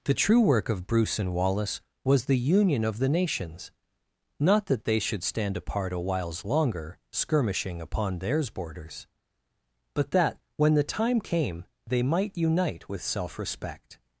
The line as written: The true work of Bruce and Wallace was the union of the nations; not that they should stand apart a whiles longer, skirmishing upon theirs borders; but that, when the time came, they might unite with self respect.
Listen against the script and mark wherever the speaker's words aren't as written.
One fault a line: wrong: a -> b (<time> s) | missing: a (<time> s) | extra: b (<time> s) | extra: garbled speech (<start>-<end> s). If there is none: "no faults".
no faults